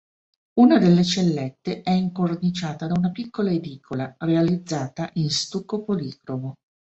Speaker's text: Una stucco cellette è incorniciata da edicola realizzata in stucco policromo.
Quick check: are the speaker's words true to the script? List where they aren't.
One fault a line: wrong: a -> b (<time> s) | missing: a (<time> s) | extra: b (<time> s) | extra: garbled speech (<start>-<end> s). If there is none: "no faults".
wrong: stucco -> delle (0.8 s)
extra: una piccola (3.0 s)